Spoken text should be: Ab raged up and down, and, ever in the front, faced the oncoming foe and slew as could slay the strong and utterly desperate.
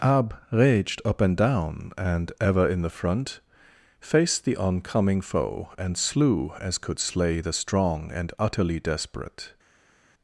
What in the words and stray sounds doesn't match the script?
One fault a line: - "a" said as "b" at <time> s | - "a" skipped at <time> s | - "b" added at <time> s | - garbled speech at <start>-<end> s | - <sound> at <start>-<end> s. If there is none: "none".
none